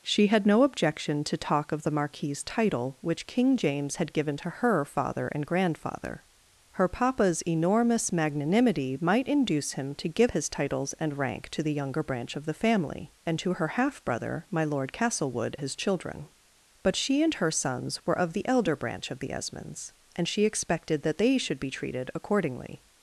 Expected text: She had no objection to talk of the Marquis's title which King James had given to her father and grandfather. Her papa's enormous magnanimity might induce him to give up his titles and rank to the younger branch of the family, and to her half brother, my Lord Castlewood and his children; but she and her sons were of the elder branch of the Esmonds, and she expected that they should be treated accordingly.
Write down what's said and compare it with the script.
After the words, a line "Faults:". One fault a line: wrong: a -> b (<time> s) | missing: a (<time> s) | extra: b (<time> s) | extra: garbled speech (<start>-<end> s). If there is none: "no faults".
She had no objection to talk of the Marquis's title which King James had given to her father and grandfather. Her papa's enormous magnanimity might induce him to give his titles and rank to the younger branch of the family, and to her half brother, my Lord Castlewood his children; but she and her sons were of the elder branch of the Esmonds, and she expected that they should be treated accordingly.
Faults:
missing: up (10.3 s)
missing: and (15.6 s)